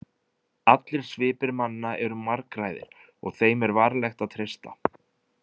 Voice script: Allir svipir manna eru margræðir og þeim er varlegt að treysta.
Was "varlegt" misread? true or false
false